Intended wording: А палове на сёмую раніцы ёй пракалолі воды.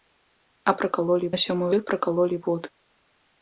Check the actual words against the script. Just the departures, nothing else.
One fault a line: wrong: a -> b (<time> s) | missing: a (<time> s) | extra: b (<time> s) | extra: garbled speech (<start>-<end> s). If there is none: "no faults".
wrong: палове -> пракалолі (0.8 s)
missing: раніцы (1.7 s)